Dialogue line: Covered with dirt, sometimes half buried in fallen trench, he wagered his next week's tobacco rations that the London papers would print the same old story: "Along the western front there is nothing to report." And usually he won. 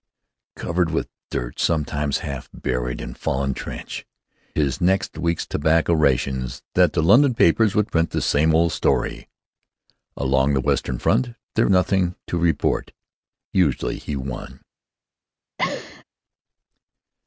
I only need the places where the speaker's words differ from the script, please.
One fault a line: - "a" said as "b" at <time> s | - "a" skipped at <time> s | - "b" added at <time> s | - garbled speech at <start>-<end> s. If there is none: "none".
- "he wagered" skipped at 4.0 s
- "is" skipped at 11.7 s
- "And" skipped at 12.9 s